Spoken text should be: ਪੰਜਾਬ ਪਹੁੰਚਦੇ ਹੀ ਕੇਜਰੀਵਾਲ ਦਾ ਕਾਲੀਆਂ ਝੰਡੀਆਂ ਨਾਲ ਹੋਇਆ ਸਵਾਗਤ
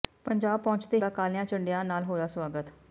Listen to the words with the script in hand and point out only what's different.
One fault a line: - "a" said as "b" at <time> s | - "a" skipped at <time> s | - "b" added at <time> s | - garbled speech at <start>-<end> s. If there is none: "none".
- "ਹੀ ਕੇਜਰੀਵਾਲ" skipped at 1.0 s